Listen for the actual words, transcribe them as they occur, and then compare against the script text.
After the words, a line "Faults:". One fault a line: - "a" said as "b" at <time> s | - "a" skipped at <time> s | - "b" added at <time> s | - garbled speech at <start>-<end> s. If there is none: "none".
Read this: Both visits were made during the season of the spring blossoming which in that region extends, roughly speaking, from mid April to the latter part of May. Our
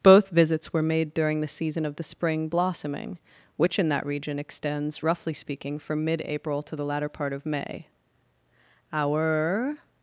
Both visits were made during the season of the spring blossoming which in that region extends, roughly speaking, from mid April to the latter part of May. Our
Faults:
none